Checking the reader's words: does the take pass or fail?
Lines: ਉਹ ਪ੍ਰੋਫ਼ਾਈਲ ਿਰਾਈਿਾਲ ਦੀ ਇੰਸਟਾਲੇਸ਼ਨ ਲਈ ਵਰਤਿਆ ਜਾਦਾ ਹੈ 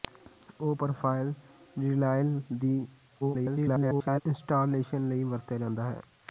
fail